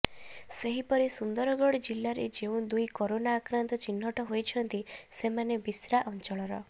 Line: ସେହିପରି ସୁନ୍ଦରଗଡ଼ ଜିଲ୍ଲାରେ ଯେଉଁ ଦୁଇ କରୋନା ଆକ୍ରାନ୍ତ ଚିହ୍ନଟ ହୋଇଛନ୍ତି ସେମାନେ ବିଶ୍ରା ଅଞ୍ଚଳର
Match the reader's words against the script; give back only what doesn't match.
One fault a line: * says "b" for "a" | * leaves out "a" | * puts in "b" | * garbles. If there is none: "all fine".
all fine